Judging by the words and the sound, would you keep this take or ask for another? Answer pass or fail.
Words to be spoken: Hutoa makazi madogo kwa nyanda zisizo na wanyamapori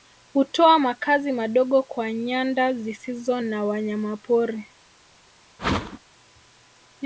fail